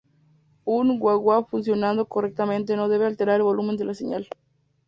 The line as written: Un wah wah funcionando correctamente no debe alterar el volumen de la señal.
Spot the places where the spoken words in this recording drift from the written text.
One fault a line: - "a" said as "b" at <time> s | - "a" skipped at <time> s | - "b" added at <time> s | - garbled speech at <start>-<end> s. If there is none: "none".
none